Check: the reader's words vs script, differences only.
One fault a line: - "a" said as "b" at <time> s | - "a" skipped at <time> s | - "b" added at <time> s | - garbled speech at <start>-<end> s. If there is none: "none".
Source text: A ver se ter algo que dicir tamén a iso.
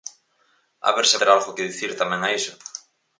none